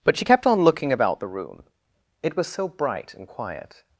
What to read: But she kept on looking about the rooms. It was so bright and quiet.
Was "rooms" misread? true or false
true